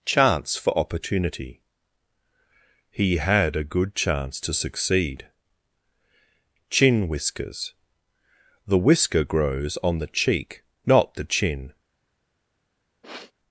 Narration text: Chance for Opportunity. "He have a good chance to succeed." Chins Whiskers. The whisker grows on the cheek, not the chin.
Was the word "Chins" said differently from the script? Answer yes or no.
yes